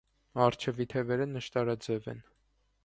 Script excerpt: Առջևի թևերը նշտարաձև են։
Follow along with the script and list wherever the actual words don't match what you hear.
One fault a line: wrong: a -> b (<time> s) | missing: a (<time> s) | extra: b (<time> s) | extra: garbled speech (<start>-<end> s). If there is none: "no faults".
no faults